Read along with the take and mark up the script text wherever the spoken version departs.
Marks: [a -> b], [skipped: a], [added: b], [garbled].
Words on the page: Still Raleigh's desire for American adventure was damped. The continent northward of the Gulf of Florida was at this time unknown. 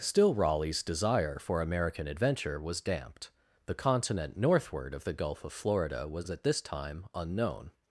Still Raleigh's desire for American adventure was damped. The continent northward of the Gulf of Florida was at this time unknown.